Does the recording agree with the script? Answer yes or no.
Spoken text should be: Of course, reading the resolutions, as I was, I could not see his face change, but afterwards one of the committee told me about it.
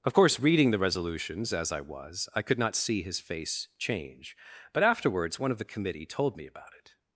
yes